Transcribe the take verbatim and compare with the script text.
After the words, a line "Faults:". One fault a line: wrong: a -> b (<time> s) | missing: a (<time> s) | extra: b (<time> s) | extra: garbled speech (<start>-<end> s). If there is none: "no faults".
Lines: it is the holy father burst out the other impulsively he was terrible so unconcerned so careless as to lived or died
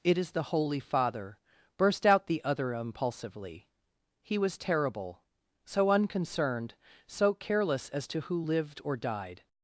it is the holy father burst out the other impulsively he was terrible so unconcerned so careless as to who lived or died
Faults:
extra: who (8.2 s)